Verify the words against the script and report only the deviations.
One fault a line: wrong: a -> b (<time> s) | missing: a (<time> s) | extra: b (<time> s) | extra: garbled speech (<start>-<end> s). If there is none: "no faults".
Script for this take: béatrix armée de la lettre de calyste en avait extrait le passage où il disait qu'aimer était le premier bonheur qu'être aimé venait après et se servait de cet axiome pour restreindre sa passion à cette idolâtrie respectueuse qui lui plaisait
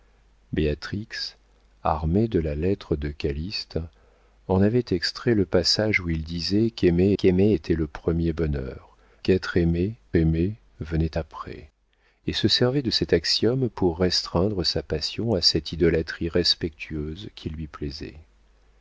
extra: qu'aimer (7.1 s)
extra: aimé (10.2 s)